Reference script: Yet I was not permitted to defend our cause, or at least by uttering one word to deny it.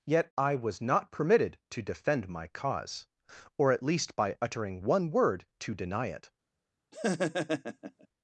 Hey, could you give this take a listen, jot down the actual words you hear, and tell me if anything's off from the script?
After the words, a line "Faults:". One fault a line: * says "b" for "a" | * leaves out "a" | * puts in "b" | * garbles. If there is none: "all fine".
Yet I was not permitted to defend my cause, or at least by uttering one word to deny it.
Faults:
* says "my" for "our"